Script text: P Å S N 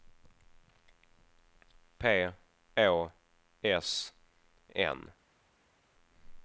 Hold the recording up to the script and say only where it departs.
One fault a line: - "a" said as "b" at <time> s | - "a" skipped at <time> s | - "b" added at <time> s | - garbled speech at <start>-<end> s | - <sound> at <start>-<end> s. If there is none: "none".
none